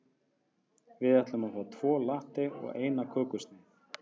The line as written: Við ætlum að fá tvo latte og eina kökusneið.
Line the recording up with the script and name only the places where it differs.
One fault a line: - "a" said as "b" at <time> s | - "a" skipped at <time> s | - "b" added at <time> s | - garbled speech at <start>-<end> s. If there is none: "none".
none